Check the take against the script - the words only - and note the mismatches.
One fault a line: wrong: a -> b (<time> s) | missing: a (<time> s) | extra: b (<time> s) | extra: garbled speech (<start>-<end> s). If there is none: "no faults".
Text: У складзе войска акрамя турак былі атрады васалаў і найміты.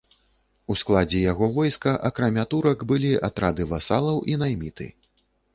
extra: яго (1.3 s)